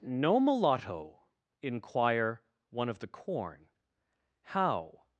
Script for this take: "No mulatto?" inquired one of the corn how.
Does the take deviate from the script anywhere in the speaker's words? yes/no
yes